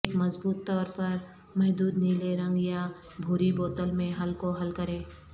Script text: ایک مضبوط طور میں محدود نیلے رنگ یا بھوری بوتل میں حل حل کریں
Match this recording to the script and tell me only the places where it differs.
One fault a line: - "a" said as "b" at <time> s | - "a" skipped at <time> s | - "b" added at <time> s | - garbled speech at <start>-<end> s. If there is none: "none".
- "میں" said as "پر" at 0.9 s
- "کو" added at 4.3 s